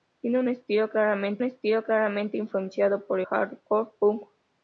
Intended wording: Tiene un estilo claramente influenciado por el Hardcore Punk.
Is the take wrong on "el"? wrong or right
wrong